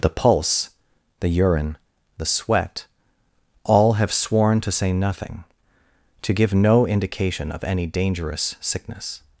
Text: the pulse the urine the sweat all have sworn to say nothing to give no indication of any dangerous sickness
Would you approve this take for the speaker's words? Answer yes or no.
yes